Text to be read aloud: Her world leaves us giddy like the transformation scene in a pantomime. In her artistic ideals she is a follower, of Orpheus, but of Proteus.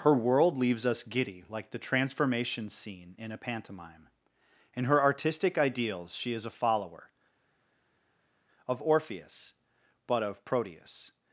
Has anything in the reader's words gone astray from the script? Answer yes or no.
no